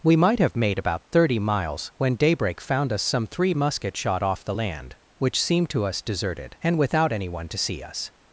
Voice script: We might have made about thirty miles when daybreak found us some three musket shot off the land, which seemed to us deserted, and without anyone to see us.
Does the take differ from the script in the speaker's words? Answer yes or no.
no